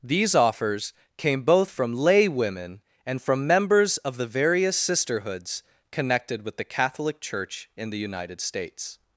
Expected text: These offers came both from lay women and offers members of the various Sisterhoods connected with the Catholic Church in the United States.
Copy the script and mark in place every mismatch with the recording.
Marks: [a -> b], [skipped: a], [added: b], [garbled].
These offers came both from lay women and [offers -> from] members of the various Sisterhoods connected with the Catholic Church in the United States.